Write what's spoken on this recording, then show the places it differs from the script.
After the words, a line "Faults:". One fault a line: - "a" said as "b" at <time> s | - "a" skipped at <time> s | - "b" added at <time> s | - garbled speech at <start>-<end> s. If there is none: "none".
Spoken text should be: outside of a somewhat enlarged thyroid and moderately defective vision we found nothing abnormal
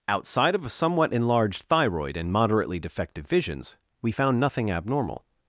outside of a somewhat enlarged thyroid and moderately defective visions we found nothing abnormal
Faults:
- "vision" said as "visions" at 3.3 s